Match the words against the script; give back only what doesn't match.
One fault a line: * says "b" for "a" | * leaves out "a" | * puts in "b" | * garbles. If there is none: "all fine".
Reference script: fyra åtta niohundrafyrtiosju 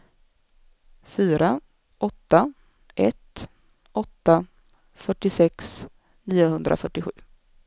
* puts in "ett åtta fyrtiosex"